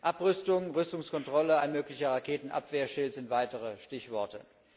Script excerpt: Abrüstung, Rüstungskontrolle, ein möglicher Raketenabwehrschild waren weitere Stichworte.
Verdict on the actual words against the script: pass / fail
fail